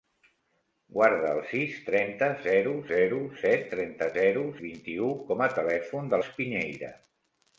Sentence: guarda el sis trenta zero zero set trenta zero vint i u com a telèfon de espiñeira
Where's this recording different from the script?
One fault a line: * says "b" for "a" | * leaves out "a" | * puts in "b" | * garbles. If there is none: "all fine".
all fine